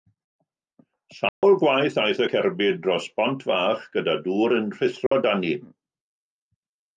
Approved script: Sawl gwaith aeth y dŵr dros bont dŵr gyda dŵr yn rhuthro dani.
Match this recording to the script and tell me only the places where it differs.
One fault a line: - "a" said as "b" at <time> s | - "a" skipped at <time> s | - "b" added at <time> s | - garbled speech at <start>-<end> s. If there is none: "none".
- "dŵr" said as "cerbyd" at 2.3 s
- "dŵr" said as "fach" at 3.5 s